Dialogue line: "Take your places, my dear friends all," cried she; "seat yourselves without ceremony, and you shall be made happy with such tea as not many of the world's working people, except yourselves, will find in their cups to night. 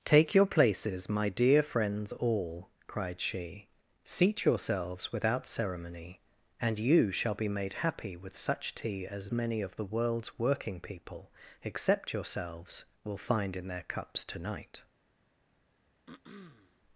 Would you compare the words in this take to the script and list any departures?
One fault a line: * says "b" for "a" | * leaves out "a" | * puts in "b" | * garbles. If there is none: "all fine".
* leaves out "not"